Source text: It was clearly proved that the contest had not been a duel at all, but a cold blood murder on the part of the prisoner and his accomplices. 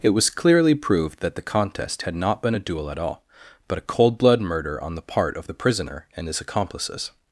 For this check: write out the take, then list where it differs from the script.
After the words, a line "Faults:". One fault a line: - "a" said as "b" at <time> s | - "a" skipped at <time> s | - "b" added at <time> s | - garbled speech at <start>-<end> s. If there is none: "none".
It was clearly proved that the contest had not been a duel at all, but a cold blood murder on the part of the prisoner and his accomplices.
Faults:
none